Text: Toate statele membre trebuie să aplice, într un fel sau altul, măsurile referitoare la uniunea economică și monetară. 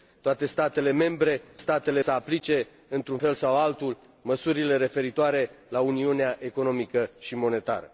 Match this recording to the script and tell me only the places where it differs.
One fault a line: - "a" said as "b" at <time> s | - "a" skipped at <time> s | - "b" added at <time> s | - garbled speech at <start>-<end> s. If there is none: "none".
- "trebuie" said as "statele" at 1.6 s